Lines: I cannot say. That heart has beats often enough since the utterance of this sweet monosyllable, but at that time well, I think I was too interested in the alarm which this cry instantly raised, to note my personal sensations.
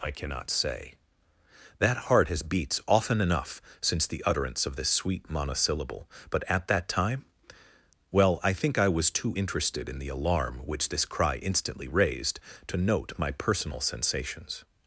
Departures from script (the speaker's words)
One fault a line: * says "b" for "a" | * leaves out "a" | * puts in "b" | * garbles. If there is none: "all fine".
all fine